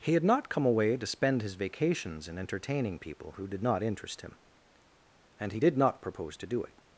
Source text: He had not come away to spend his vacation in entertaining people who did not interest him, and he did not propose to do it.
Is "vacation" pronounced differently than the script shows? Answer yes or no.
yes